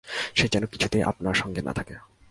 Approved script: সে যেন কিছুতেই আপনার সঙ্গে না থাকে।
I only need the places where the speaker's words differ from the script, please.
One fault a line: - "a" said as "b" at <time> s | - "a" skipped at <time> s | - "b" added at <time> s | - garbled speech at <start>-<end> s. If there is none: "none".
none